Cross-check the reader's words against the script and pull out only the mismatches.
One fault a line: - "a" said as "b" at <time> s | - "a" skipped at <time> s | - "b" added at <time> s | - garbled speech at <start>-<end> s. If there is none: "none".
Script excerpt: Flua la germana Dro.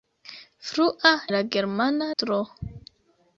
none